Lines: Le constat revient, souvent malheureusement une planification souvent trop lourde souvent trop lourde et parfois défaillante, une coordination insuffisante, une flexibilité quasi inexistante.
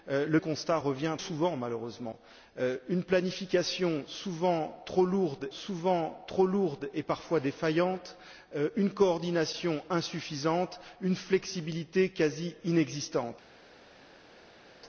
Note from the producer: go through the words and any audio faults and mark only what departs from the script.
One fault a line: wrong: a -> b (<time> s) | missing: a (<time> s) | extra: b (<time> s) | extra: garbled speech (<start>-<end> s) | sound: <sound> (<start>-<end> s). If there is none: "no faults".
no faults